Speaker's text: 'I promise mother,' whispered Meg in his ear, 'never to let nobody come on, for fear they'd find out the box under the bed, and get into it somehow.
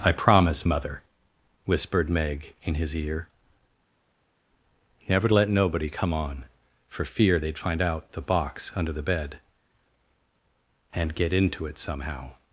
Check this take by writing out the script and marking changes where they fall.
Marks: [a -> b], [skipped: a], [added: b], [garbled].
'I promise mother,' whispered Meg in his ear, 'never to let nobody come on, for fear they'd find out the box under the bed, and get into it somehow.